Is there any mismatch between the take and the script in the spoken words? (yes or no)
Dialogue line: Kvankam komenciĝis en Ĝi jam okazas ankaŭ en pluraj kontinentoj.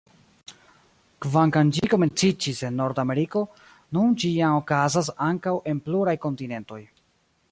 yes